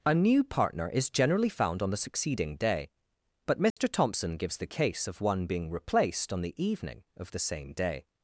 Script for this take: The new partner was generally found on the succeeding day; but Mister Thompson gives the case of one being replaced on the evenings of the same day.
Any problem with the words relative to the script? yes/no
yes